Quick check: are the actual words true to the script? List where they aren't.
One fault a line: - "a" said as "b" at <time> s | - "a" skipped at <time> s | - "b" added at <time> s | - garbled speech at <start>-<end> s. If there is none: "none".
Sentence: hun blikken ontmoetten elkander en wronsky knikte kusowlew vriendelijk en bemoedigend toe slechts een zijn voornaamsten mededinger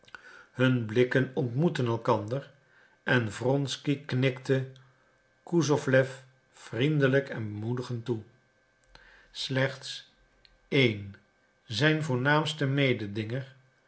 none